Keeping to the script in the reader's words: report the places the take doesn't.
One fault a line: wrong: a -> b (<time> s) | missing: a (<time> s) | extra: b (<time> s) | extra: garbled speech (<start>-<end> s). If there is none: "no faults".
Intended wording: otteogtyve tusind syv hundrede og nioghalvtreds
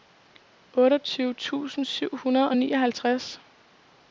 no faults